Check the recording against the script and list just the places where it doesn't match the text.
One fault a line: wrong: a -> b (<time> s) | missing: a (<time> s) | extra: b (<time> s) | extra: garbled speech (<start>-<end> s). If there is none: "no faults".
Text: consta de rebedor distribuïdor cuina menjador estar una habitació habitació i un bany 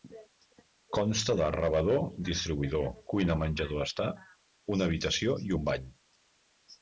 missing: habitació (5.4 s)